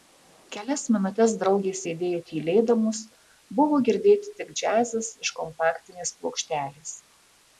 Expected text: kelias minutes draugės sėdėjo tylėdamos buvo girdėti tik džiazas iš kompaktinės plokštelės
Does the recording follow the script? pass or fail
pass